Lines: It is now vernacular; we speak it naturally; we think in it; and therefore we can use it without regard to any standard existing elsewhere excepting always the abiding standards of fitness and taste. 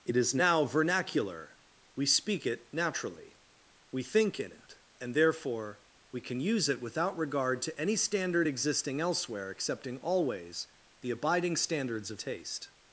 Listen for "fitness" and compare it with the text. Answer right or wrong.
wrong